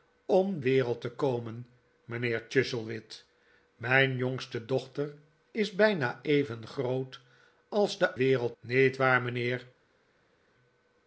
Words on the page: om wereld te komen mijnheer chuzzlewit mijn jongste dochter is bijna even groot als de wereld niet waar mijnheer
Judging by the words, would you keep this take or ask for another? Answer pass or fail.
pass